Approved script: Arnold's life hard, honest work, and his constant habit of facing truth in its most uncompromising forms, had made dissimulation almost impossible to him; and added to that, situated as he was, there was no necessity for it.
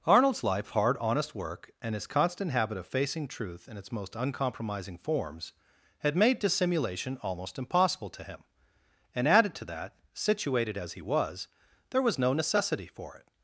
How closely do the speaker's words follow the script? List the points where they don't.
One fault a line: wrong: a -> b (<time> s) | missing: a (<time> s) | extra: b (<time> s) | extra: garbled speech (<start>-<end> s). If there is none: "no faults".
no faults